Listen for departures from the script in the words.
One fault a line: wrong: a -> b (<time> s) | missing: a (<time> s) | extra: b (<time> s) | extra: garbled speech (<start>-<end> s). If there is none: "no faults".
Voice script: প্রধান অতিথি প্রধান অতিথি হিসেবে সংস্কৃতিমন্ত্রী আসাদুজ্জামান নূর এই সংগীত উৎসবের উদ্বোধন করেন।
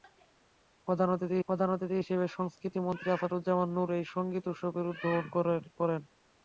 no faults